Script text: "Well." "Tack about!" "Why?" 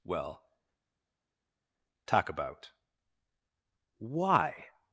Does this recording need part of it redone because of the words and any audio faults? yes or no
yes